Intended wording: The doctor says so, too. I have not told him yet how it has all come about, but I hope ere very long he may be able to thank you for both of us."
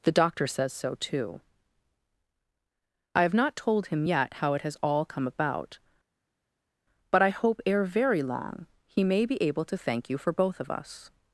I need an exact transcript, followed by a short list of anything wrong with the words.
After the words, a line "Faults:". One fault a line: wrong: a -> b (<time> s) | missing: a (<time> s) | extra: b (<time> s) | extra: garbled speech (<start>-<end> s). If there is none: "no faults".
The doctor says so, too. I have not told him yet how it has all come about, but I hope ere very long he may be able to thank you for both of us."
Faults:
no faults